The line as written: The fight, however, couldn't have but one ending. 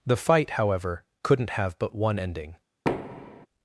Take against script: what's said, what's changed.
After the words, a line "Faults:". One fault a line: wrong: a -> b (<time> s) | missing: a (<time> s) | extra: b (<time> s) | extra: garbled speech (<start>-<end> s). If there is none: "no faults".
The fight, however, couldn't have but one ending.
Faults:
no faults